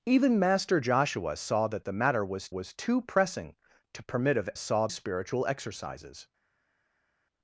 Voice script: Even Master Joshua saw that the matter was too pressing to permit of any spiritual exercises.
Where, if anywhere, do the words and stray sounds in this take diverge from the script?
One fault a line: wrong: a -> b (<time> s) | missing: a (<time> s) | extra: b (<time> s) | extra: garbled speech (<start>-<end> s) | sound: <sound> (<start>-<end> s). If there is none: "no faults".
extra: was (2.5 s)
wrong: any -> saw (4.6 s)